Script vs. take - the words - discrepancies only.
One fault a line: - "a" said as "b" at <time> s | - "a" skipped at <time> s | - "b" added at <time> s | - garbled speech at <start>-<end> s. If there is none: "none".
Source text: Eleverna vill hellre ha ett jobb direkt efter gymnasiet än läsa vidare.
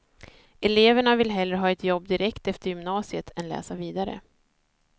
none